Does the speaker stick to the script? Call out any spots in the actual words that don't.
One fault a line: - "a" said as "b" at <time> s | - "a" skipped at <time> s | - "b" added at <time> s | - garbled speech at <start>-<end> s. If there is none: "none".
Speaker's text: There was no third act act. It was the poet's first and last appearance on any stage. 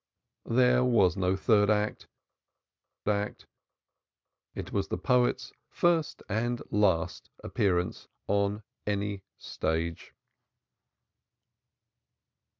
none